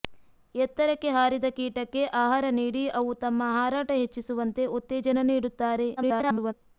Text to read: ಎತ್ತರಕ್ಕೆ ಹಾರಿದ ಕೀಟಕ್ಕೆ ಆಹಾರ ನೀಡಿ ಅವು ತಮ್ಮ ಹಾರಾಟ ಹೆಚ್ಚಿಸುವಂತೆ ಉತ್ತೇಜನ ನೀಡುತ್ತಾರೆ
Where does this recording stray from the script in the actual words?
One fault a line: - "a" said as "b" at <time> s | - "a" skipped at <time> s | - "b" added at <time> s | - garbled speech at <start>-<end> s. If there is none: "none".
- garbled speech at 6.0-6.5 s